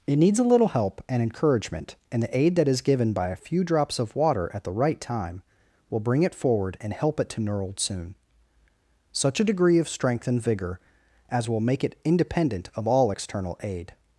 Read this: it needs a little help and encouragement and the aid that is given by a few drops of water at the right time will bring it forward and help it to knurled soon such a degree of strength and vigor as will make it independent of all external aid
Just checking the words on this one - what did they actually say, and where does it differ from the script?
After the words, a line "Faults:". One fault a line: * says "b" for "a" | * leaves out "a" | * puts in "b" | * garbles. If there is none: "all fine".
it needs a little help and encouragement and the aid that is given by a few drops of water at the right time will bring it forward and help it to knurled soon such a degree of strength and vigor as will make it independent of all external aid
Faults:
all fine